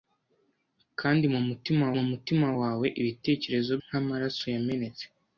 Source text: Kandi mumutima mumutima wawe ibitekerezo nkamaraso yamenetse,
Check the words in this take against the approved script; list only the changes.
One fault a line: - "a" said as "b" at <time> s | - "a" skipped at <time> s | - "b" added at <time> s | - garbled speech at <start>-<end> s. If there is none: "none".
none